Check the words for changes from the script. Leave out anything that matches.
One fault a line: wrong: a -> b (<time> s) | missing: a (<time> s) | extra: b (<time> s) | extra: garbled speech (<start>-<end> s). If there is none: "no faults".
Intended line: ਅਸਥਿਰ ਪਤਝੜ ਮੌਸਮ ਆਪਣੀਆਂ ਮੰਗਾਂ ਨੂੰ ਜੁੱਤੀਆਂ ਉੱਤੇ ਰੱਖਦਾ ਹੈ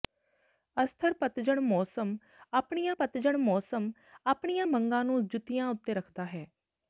extra: ਪਤਝੜ ਮੌਸਮ ਆਪਣੀਆਂ (2.9 s)